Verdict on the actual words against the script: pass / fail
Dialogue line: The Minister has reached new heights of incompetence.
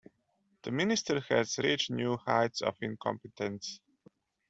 pass